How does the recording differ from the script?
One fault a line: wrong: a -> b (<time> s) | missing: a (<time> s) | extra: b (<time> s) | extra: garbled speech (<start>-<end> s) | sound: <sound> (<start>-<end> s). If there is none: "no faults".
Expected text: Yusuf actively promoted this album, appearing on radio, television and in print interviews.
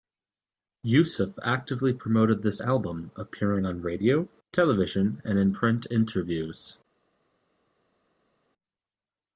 no faults